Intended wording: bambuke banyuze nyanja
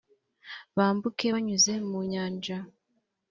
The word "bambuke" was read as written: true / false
true